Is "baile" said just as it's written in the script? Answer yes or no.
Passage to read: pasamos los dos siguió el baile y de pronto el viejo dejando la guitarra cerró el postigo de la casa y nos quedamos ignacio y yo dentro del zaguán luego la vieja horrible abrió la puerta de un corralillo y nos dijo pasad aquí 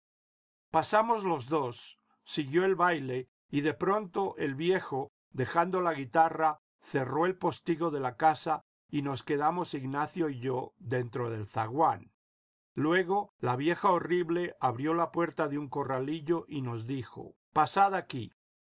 yes